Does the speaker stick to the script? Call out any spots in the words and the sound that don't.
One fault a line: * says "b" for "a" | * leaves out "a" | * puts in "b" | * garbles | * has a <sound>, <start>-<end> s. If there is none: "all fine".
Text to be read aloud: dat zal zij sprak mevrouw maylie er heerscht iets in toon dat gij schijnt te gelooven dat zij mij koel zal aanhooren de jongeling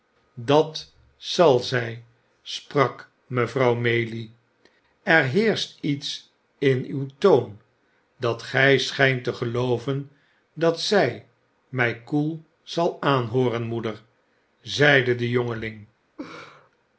* puts in "uw"
* puts in "moeder zeide"
* has a laugh, 16.2-16.7 s